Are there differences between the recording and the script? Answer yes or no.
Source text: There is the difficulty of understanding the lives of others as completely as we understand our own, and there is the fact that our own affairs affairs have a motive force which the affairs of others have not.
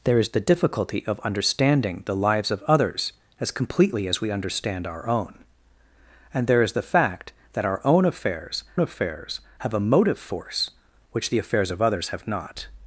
no